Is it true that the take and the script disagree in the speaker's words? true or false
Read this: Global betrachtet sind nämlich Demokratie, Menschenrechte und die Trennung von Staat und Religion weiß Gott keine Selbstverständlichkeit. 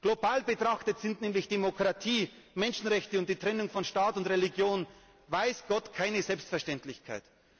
false